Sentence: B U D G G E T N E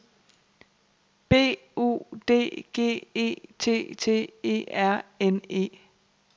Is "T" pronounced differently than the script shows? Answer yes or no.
yes